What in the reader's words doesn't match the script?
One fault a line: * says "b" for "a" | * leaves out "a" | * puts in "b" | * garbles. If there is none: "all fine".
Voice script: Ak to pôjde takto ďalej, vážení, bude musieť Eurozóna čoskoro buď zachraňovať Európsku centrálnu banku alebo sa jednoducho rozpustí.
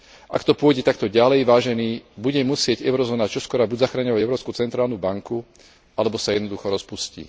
all fine